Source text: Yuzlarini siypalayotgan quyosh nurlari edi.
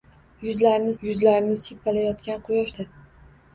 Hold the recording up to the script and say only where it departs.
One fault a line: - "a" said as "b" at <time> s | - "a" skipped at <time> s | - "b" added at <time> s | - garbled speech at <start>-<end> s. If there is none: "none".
- "yuzlarini" added at 1.1 s
- "nurlari" skipped at 2.7 s